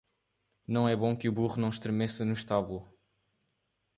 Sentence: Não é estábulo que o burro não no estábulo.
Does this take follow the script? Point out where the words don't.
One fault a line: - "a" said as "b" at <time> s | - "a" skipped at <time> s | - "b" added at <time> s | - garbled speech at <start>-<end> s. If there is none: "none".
- "estábulo" said as "bom" at 0.9 s
- "estremeça" added at 1.7 s